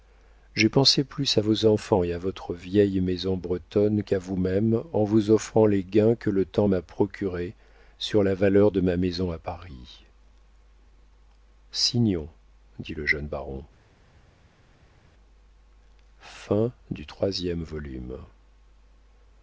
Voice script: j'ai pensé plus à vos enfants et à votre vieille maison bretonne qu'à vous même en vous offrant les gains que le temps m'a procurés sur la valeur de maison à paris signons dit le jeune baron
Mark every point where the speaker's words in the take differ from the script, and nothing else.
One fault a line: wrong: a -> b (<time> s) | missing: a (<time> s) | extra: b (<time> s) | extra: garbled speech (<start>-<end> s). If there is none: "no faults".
extra: ma (8.8 s)